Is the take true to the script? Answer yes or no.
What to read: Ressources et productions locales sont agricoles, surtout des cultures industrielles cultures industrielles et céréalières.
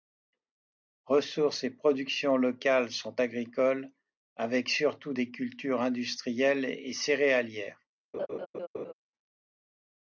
no